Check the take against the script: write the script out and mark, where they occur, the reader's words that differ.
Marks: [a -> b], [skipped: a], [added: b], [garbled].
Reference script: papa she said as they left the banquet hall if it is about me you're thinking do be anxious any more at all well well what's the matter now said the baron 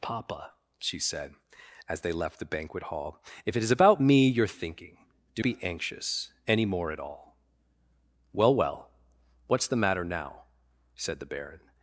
papa she said as they left the banquet hall if it is about me you're thinking do be anxious any more at all well well what's the matter now said the baron